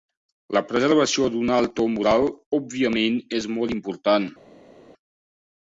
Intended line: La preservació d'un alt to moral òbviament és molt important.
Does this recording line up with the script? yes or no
yes